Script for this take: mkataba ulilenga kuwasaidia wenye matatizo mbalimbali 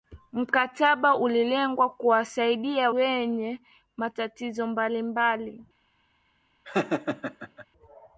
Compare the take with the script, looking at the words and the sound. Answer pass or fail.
fail